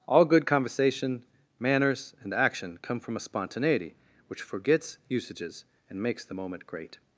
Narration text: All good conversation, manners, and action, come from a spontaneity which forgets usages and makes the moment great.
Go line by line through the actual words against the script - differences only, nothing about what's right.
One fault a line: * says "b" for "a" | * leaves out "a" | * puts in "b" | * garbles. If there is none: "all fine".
all fine